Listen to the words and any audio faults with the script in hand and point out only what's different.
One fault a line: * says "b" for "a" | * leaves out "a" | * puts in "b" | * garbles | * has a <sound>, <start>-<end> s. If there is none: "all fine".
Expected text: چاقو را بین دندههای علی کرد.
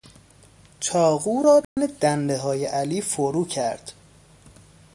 * has a dropout, 1.6-1.8 s
* puts in "فرو"